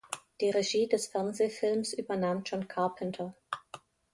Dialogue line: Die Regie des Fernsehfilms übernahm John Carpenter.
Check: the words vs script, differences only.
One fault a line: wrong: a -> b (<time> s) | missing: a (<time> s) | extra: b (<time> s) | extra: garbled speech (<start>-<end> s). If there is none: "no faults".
no faults